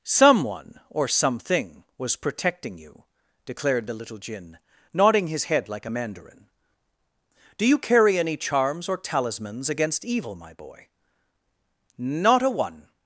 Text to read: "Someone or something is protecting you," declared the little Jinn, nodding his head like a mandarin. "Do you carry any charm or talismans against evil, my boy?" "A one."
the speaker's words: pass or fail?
fail